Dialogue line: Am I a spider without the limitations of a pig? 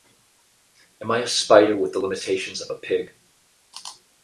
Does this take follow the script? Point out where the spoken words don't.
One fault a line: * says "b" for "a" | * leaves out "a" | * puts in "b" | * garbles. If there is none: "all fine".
* says "with" for "without"